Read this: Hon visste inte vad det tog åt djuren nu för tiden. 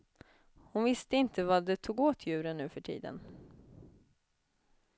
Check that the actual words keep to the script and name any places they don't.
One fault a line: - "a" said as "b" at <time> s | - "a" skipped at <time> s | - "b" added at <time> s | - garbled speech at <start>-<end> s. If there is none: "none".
none